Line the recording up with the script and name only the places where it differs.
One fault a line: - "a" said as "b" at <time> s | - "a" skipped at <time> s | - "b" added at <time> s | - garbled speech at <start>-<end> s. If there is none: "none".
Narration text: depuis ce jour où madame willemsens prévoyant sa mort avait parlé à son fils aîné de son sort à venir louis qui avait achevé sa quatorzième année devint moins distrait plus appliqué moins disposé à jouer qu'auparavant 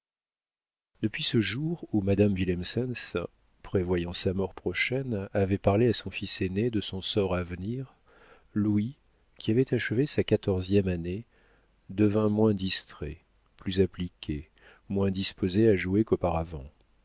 - "prochaine" added at 4.5 s